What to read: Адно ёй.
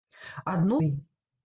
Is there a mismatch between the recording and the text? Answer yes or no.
no